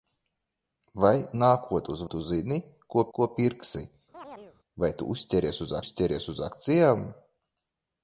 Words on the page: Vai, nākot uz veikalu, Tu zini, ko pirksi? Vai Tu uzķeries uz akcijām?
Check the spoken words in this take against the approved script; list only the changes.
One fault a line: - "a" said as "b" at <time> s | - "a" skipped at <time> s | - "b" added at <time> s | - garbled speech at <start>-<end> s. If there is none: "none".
- "veikalu" skipped at 2.0 s
- "ko" added at 3.2 s
- "uzķeries uz" added at 5.8 s